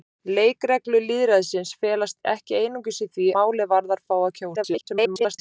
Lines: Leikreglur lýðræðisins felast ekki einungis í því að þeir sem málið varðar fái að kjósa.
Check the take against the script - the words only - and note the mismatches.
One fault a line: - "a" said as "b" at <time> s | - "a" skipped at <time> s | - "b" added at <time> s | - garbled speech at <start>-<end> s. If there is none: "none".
- "að þeir sem" skipped at 3.3 s
- garbled speech at 4.6-5.4 s